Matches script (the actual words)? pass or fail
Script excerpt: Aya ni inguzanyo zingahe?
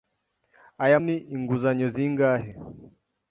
pass